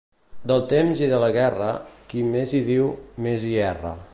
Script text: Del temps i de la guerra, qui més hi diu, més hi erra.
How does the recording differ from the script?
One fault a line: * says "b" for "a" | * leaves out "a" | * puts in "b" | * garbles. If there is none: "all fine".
all fine